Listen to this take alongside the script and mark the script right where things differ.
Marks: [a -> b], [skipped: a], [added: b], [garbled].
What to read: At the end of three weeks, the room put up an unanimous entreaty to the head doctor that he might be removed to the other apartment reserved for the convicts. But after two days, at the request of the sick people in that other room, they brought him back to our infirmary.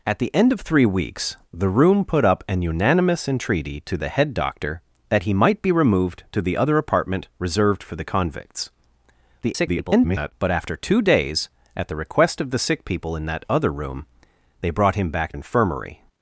At the end of three weeks, the room put up an unanimous entreaty to the head doctor that he might be removed to the other apartment reserved for the convicts. [garbled] But after two days, at the request of the sick people in that other room, they brought him back [skipped: to our] infirmary.